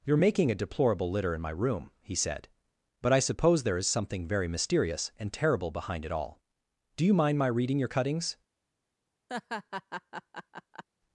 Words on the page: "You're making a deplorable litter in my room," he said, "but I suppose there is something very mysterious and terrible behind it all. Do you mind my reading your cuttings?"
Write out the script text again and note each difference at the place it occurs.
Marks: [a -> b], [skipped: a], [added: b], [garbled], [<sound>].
"You're making a deplorable litter in my room," he said, "but I suppose there is something very mysterious and terrible behind it all. Do you mind my reading your cuttings?" [laugh]